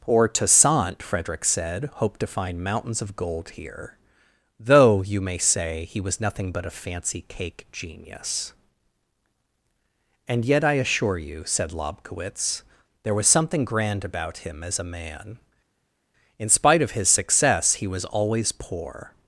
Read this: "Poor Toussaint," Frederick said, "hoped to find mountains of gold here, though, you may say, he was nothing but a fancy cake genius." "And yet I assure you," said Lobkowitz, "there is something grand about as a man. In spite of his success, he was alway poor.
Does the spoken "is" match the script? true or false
false